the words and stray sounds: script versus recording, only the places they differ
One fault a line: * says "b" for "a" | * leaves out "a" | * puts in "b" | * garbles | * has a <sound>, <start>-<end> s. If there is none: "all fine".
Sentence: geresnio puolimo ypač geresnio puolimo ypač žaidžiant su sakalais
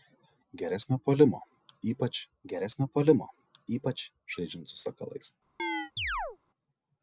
* has a chirp, 5.6-6.4 s